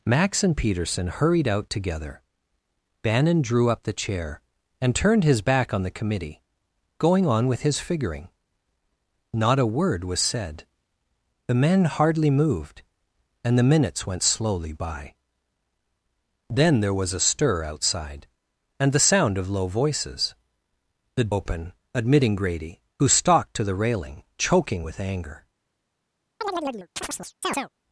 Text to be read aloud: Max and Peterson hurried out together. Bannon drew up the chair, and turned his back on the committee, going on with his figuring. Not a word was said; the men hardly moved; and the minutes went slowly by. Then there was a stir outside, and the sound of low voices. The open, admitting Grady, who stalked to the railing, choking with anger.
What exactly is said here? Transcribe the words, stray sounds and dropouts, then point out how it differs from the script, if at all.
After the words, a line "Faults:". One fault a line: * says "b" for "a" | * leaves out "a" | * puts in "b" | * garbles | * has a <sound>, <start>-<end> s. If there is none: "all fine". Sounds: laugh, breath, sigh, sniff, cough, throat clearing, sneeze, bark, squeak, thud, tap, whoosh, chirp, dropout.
Max and Peterson hurried out together. Bannon drew up the chair, and turned his back on the committee, going on with his figuring. Not a word was said; the men hardly moved; and the minutes went slowly by. Then there was a stir outside, and the sound of low voices. The open, admitting Grady, who stalked to the railing, choking with anger.
Faults:
* has a chirp, 26.4-27.7 s